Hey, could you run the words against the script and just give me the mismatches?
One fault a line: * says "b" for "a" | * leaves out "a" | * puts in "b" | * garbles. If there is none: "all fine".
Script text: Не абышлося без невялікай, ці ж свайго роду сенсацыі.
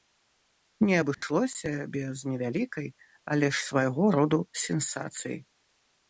* says "але" for "ці"